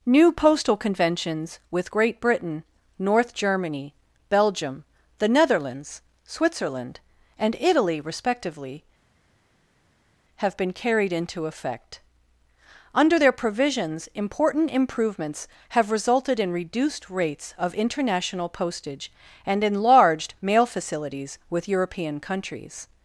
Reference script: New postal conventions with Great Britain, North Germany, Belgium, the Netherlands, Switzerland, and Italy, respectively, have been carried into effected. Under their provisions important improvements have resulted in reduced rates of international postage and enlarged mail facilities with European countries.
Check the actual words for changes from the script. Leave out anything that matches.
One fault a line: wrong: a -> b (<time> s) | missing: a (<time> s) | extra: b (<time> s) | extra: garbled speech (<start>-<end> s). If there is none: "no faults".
wrong: effected -> effect (11.5 s)